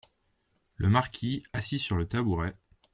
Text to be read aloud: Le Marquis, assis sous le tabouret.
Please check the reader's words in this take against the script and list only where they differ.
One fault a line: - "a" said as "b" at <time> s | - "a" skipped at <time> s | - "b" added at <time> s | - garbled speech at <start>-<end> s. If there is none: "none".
- "sous" said as "sur" at 1.8 s